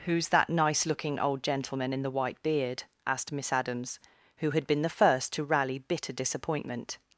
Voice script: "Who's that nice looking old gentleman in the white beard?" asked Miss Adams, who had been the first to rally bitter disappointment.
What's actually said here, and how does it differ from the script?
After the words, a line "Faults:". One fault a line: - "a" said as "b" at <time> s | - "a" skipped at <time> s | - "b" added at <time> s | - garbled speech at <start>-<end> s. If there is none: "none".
"Who's that nice looking old gentleman in the white beard?" asked Miss Adams, who had been the first to rally bitter disappointment.
Faults:
none